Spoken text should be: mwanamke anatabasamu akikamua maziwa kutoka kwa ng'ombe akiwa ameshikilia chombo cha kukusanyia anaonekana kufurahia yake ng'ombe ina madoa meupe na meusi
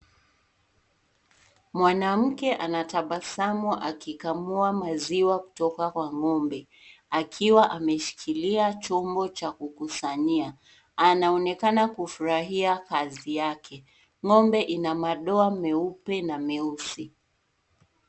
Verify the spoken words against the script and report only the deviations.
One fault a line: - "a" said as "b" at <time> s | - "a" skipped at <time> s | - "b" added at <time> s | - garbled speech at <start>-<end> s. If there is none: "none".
- "kazi" added at 12.8 s